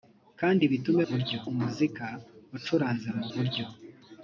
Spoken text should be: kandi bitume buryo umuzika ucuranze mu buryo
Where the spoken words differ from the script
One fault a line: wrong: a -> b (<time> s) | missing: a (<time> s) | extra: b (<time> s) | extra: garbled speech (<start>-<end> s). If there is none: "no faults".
no faults